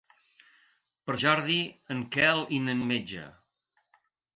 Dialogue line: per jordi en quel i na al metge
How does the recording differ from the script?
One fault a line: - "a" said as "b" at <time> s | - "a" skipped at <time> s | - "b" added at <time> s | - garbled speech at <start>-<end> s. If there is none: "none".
none